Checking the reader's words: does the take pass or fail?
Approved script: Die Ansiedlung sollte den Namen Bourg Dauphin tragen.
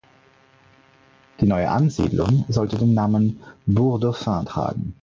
fail